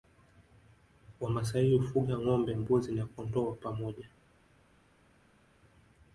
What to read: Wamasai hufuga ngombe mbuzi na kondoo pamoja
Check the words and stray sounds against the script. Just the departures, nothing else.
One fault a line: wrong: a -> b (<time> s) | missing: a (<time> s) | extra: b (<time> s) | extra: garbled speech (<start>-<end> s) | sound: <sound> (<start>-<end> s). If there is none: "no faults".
no faults